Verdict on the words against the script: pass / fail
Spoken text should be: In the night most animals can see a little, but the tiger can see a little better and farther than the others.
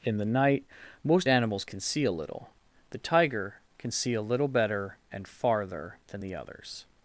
fail